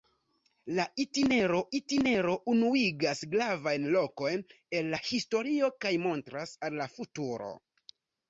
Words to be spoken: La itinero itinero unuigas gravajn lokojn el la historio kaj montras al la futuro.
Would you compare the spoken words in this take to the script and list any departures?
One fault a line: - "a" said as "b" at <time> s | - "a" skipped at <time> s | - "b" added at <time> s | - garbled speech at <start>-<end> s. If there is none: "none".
none